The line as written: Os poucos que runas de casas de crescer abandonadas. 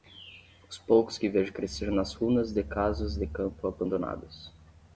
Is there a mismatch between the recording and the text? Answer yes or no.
yes